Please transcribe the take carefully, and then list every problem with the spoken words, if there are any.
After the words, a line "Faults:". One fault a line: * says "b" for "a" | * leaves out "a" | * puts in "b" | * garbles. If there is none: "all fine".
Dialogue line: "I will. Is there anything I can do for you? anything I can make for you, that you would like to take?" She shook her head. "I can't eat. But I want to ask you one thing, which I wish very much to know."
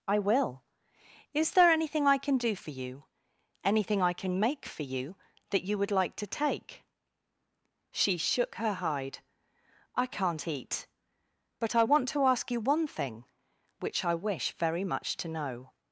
"I will. Is there anything I can do for you? anything I can make for you, that you would like to take?" She shook her hide. "I can't eat. But I want to ask you one thing, which I wish very much to know."
Faults:
* says "hide" for "head"